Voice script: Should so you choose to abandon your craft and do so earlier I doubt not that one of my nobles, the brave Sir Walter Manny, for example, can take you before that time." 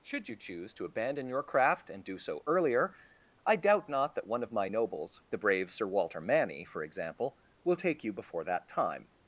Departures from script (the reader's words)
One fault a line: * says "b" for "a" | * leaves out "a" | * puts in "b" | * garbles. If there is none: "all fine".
* leaves out "so"
* says "will" for "can"